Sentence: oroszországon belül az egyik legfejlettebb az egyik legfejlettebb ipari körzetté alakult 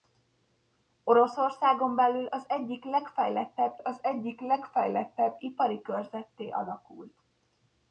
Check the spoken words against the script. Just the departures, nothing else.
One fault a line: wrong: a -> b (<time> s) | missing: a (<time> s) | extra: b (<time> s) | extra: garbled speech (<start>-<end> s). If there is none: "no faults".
no faults